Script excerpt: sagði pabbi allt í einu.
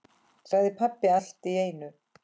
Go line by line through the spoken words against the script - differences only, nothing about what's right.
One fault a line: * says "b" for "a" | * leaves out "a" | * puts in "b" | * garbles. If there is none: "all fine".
all fine